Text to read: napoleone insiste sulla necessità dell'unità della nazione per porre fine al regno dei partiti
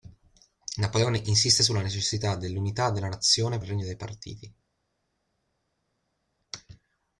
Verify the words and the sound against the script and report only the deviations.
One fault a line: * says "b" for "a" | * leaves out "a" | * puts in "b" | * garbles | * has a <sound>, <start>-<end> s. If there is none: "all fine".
* leaves out "per porre fine"